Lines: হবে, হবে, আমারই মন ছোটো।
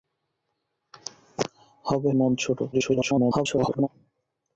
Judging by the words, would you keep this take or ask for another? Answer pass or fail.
fail